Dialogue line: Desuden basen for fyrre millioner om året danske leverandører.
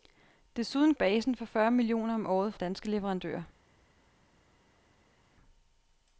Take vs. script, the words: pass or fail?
pass